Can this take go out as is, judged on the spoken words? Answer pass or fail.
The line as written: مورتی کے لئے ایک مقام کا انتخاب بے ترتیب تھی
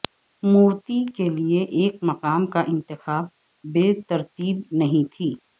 fail